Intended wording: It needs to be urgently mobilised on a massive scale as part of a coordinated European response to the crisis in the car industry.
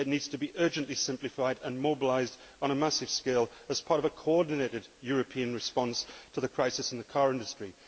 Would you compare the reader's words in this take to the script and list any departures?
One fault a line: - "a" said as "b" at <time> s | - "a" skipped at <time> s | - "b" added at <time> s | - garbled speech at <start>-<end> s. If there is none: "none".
- "simplified and" added at 0.9 s